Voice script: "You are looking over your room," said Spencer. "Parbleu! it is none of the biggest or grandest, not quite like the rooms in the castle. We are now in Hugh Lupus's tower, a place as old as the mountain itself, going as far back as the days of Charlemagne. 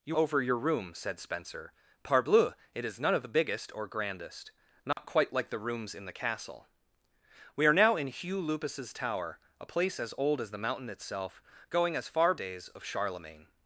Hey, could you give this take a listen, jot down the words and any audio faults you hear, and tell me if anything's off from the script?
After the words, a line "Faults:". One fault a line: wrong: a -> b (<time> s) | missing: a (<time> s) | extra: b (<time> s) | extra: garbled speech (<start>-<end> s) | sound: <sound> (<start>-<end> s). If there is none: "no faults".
"You over your room," said Spencer. "Parbleu! it is none of the biggest or grandest, not quite like the rooms in the castle. We are now in Hugh Lupus's tower, a place as old as the mountain itself, going as far days of Charlemagne.
Faults:
missing: are looking (0.2 s)
sound: dropout (4.9-5.0 s)
missing: back as the (12.4 s)